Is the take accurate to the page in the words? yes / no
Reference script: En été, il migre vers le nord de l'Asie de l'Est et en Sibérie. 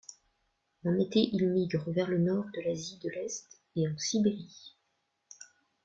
yes